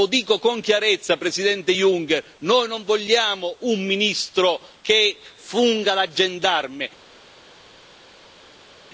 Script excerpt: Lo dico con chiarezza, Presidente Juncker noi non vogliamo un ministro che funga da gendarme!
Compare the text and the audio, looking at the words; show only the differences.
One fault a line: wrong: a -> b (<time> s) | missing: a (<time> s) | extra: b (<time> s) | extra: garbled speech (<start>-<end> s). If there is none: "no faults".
no faults